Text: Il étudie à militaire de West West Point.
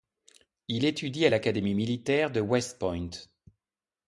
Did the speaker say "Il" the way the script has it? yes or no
yes